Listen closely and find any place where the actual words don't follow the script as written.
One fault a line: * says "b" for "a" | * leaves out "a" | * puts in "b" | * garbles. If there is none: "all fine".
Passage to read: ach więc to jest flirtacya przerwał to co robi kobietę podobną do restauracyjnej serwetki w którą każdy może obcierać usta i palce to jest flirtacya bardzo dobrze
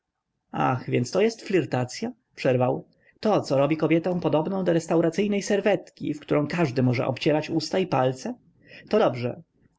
* leaves out "jest flirtacya bardzo"